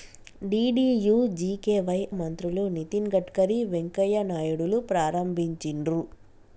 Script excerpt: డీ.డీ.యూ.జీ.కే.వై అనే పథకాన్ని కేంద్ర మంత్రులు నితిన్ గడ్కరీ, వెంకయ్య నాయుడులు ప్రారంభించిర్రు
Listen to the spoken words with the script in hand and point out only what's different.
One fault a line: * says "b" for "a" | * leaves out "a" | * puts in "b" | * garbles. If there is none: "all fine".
* leaves out "అనే పథకాన్ని కేంద్ర"